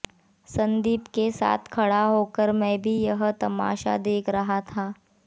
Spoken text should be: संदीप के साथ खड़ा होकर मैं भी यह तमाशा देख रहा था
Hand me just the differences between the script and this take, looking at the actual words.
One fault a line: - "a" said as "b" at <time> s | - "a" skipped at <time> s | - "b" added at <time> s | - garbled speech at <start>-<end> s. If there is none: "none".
none